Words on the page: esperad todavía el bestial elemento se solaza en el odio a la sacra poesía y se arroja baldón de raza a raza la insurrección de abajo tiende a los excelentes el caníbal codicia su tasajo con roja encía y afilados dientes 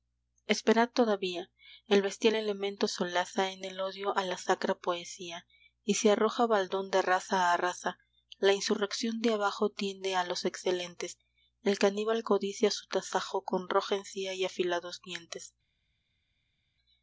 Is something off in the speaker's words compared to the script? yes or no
yes